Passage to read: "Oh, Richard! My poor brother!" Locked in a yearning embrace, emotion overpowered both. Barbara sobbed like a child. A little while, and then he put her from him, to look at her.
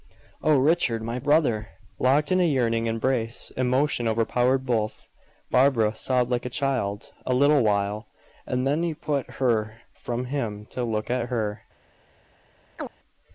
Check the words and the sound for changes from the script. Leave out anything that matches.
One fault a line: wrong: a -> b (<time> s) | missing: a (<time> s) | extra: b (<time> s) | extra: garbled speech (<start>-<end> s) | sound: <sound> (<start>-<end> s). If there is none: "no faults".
missing: poor (1.2 s)
sound: chirp (12.8-12.9 s)